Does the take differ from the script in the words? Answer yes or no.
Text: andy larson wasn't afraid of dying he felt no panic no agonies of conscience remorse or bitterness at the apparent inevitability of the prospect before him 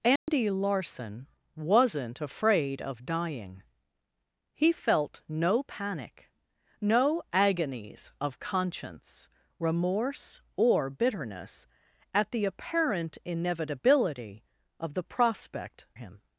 yes